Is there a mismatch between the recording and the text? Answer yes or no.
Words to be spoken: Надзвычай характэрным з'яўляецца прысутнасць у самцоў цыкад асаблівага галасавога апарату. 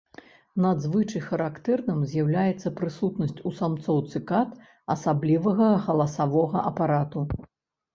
no